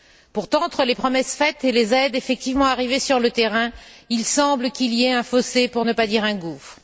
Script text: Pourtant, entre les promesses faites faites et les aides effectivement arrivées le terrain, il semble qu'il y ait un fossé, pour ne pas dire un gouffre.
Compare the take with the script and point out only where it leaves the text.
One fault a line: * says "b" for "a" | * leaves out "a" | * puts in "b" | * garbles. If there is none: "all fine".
* leaves out "faites"
* puts in "sur"